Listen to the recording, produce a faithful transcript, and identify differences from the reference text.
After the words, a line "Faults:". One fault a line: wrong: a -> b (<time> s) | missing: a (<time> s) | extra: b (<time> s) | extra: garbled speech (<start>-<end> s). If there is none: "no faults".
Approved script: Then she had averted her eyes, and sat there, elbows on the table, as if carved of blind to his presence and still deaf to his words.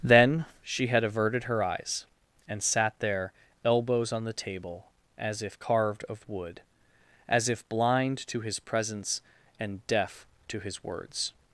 Then she had averted her eyes, and sat there, elbows on the table, as if carved of wood, as if blind to his presence and deaf to his words.
Faults:
extra: wood as if (6.3 s)
missing: still (9.9 s)